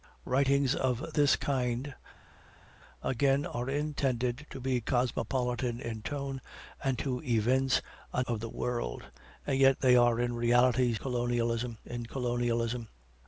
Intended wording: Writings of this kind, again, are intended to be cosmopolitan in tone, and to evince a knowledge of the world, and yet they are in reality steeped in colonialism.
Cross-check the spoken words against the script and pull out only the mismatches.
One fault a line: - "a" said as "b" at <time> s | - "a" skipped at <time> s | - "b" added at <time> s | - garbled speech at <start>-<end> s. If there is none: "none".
- "knowledge" skipped at 8.2 s
- "steeped" said as "colonialism" at 11.0 s